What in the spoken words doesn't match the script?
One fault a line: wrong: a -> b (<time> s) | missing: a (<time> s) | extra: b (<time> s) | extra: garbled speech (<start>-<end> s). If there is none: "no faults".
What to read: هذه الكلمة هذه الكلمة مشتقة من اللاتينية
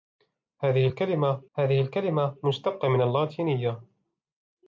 no faults